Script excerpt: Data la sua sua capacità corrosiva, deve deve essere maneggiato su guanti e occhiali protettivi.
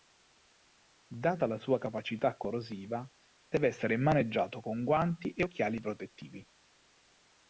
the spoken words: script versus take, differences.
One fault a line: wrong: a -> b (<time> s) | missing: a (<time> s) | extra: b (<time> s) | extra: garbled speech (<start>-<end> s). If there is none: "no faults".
missing: sua (1.8 s)
missing: deve (3.7 s)
wrong: su -> con (4.6 s)